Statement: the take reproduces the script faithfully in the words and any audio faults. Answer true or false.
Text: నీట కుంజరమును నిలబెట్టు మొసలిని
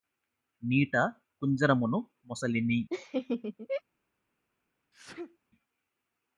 false